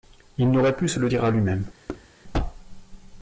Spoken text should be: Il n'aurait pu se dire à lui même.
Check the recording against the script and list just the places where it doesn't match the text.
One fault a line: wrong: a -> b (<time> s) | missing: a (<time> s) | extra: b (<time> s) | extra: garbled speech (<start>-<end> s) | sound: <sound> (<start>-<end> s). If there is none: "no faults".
extra: le (1.0 s)
sound: thud (1.9-2.1 s)